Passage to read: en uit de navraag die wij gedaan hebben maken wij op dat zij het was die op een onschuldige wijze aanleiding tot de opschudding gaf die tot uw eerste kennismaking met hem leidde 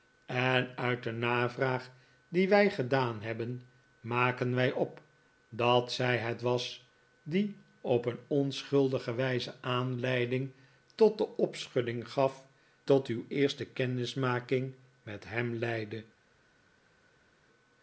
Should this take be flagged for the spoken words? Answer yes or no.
yes